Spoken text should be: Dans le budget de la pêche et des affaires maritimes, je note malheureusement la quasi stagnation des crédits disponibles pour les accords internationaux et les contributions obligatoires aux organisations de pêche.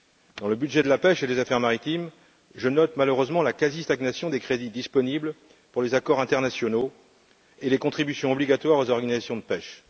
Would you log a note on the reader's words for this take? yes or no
no